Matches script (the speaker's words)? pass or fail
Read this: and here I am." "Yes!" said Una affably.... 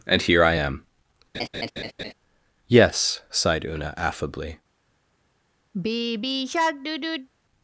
fail